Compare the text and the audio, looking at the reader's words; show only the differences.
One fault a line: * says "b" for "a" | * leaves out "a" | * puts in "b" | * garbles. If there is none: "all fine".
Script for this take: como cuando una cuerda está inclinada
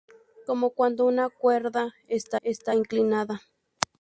* puts in "está"